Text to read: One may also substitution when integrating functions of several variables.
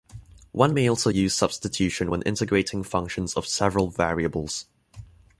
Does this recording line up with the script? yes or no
no